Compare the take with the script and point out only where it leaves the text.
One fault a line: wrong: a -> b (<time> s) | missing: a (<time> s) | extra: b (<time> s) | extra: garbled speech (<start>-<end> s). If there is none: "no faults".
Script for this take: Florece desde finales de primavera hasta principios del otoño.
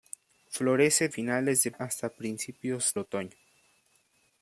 missing: desde (1.1 s)
missing: primavera (1.7 s)
missing: del (3.0 s)